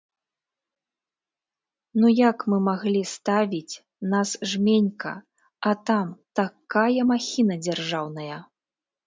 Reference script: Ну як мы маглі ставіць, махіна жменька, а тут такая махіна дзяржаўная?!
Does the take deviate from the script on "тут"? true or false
true